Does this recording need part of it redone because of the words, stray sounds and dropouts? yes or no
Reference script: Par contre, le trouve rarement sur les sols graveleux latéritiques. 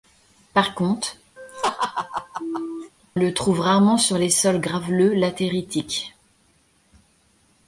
yes